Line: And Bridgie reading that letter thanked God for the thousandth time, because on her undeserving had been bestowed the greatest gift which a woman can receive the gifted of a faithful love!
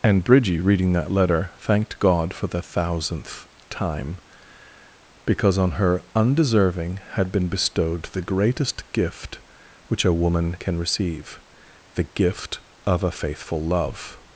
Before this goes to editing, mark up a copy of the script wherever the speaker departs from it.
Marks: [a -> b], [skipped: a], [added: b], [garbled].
And Bridgie reading that letter thanked God for the thousandth time, because on her undeserving had been bestowed the greatest gift which a woman can receive the [gifted -> gift] of a faithful love!